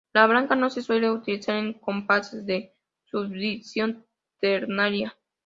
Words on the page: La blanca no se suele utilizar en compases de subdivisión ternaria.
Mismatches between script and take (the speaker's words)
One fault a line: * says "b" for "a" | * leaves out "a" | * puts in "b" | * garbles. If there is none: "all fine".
all fine